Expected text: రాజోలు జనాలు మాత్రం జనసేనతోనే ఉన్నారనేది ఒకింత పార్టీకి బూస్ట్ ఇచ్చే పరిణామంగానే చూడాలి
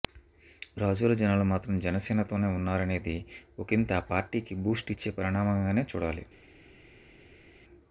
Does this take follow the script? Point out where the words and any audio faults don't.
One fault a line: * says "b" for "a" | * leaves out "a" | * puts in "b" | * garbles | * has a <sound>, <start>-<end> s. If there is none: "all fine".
* puts in "ఆ"